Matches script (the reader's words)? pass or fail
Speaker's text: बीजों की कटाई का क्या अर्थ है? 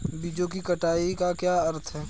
pass